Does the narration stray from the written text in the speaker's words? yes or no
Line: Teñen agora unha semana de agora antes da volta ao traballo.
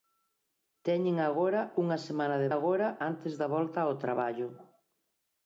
no